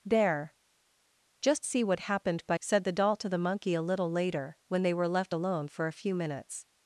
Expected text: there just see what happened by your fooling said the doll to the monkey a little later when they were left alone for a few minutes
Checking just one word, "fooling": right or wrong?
wrong